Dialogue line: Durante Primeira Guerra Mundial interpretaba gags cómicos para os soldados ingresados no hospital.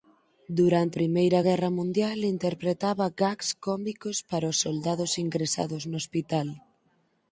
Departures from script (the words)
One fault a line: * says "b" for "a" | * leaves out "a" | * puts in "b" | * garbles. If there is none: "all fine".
all fine